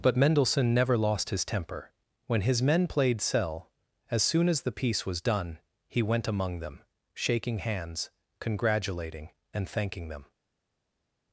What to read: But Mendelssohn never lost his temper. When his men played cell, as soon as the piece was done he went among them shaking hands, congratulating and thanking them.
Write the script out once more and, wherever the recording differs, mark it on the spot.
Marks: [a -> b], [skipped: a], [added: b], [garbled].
But Mendelssohn never lost his temper. When his men played cell, as soon as the piece was done he went among them shaking hands, congratulating and thanking them.